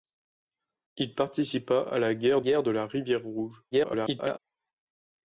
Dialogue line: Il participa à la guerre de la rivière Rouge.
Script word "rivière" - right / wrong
right